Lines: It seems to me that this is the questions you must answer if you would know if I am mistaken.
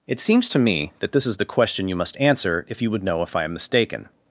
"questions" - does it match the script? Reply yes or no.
no